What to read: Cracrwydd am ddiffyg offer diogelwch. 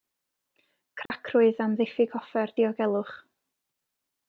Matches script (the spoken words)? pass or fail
pass